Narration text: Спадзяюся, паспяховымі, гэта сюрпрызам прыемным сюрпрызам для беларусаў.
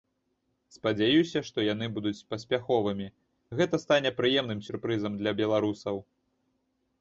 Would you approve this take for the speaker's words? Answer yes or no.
no